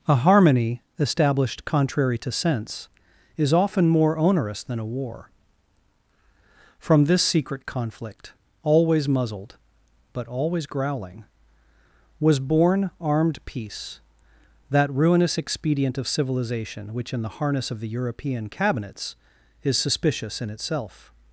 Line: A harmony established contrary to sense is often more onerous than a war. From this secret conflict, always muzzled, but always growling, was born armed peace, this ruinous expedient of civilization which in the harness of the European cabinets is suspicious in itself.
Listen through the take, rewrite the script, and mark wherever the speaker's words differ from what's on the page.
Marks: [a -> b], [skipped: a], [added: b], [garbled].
A harmony established contrary to sense is often more onerous than a war. From this secret conflict, always muzzled, but always growling, was born armed peace, [this -> that] ruinous expedient of civilization which in the harness of the European cabinets is suspicious in itself.